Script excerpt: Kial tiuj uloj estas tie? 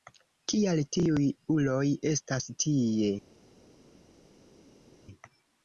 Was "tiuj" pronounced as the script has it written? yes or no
yes